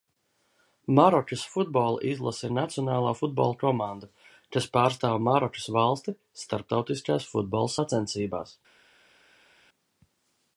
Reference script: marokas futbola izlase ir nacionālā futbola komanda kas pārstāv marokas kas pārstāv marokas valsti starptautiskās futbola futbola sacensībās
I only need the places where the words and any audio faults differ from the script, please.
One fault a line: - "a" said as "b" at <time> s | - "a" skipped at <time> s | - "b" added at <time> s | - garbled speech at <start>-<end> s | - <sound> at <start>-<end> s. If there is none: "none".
- "kas pārstāv marokas" skipped at 5.7 s
- "futbola" skipped at 7.8 s